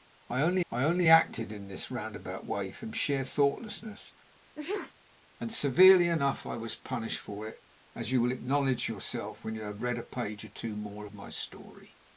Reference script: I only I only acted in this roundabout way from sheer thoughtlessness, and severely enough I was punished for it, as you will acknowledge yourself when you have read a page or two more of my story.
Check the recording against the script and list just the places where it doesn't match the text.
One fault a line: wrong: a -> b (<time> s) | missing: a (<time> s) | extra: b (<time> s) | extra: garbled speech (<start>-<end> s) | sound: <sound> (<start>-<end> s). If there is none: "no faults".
sound: sneeze (4.5-4.9 s)